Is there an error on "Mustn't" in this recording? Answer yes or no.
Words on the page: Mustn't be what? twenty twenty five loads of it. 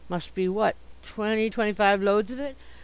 yes